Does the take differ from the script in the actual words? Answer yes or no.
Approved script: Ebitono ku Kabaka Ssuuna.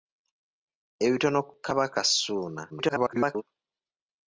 yes